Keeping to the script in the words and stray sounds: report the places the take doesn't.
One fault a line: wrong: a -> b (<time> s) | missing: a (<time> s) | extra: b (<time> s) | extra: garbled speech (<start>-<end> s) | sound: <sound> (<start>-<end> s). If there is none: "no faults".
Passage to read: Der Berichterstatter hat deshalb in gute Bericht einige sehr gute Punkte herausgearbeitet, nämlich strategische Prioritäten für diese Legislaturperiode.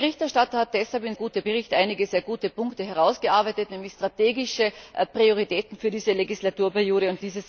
no faults